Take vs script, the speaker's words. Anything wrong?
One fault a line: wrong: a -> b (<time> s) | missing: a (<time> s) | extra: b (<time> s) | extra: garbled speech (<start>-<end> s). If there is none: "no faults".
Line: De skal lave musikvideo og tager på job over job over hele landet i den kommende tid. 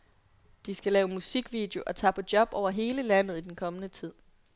missing: job over (2.7 s)